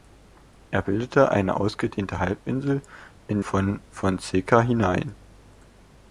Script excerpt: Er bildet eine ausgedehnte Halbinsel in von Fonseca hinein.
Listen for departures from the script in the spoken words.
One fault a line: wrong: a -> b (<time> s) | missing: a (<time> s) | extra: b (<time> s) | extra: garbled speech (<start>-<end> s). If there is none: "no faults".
no faults